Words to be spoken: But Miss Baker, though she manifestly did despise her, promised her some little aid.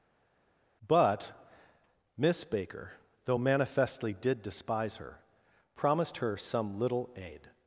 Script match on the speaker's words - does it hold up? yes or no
no